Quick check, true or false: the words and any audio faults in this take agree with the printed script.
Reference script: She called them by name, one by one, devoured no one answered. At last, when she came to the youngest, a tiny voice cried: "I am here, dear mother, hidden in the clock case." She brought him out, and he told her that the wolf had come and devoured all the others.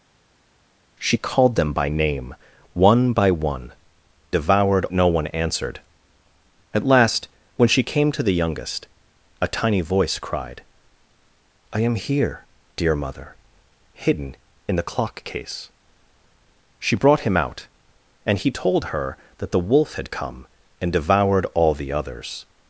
true